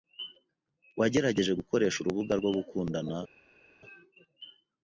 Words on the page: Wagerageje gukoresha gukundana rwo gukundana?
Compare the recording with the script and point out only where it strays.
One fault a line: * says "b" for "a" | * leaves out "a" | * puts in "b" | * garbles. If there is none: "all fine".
* says "urubuga" for "gukundana"